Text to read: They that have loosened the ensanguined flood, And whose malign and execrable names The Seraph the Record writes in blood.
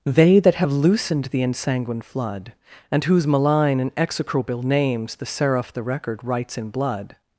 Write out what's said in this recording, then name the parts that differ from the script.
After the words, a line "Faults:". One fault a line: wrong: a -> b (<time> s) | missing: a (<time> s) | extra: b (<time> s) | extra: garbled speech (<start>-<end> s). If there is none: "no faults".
They that have loosened the ensanguined flood, And whose malign and execrable names The Seraph the Record writes in blood.
Faults:
no faults